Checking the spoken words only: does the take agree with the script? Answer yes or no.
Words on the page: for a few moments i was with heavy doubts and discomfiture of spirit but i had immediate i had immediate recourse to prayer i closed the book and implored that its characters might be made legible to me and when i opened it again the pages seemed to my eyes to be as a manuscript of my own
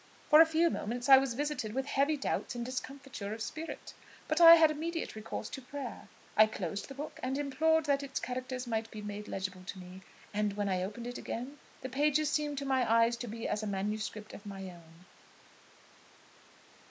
no